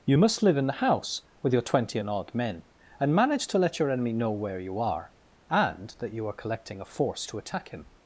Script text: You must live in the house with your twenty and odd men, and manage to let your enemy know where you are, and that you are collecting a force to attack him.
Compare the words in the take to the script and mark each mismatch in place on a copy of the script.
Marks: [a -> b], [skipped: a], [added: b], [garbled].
You must live in the house with your twenty and odd men, and manage to let your enemy know where you are, and that you are collecting a force to attack him.